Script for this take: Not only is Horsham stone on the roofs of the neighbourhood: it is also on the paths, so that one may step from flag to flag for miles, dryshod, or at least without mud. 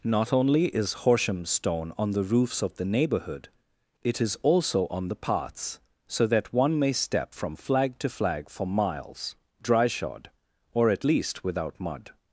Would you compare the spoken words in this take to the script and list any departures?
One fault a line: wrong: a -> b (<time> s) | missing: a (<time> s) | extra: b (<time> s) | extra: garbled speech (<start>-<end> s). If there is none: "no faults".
no faults